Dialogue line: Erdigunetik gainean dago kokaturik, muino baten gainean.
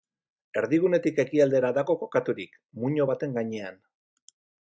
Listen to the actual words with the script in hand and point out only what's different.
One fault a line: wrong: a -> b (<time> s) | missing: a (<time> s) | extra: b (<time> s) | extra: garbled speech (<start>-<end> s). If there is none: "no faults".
wrong: gainean -> ekialdera (1.2 s)